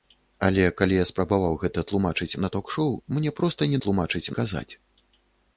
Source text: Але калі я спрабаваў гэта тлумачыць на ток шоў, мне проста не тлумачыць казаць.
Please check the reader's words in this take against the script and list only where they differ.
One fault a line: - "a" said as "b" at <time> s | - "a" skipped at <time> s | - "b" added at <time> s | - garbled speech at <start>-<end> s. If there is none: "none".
none